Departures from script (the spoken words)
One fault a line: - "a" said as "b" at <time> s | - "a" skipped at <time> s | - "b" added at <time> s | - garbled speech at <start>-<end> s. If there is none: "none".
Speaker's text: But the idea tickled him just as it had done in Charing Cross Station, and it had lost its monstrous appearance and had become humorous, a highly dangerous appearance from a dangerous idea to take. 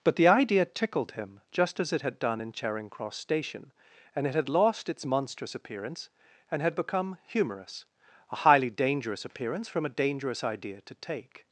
none